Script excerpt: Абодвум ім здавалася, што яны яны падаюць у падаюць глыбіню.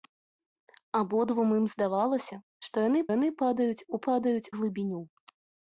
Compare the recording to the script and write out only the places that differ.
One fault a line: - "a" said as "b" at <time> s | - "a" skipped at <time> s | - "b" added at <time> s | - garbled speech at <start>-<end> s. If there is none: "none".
none